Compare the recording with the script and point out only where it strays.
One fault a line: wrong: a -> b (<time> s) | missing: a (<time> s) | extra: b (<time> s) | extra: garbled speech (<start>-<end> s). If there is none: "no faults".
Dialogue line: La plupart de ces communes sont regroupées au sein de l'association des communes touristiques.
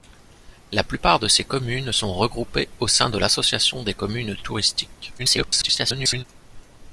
extra: garbled speech (5.2-6.2 s)